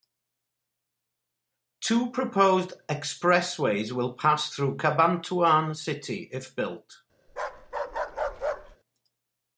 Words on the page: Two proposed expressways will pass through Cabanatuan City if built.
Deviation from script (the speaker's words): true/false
false